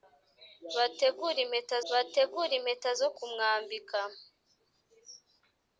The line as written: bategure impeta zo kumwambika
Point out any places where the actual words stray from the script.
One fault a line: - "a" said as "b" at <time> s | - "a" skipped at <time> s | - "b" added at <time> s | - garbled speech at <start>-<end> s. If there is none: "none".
- "bategure impeta" added at 1.9 s